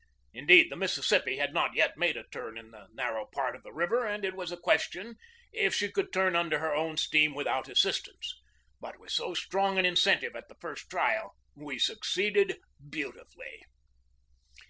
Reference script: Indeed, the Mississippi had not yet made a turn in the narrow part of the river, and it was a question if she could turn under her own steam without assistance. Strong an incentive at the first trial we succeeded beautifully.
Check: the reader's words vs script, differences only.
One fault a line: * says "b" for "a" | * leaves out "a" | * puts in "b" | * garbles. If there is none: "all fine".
* puts in "But with so"